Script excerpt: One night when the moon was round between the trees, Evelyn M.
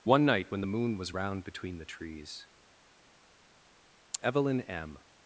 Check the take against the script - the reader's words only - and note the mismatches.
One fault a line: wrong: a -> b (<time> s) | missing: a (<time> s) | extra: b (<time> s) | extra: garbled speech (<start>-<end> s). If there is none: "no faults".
no faults